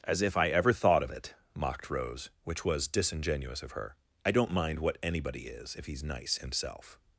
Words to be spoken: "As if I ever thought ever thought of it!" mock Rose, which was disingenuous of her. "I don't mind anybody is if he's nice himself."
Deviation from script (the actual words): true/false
true